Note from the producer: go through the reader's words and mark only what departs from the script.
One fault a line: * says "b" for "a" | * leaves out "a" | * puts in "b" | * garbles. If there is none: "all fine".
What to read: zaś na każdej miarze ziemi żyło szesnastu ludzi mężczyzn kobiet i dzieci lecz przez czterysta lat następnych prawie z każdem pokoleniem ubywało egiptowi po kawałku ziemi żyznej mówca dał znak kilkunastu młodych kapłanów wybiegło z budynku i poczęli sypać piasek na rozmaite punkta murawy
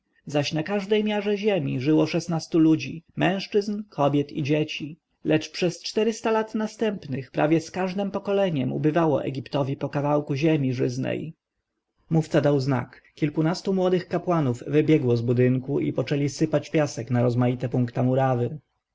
all fine